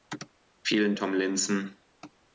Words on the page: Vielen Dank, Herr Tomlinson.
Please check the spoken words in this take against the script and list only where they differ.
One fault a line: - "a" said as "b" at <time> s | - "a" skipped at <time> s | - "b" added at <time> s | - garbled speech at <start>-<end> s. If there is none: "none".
- "Dank Herr" skipped at 0.9 s